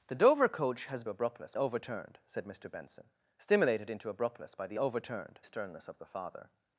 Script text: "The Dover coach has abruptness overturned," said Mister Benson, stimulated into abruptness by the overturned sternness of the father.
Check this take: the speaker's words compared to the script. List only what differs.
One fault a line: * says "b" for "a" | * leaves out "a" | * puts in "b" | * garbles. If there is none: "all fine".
all fine